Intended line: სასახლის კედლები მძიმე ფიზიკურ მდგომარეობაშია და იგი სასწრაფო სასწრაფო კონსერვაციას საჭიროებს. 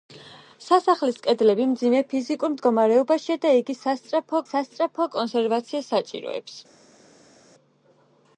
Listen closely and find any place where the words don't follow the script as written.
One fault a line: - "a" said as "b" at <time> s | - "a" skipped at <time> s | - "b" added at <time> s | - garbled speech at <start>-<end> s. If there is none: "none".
none